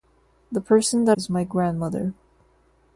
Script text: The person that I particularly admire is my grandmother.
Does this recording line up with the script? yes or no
no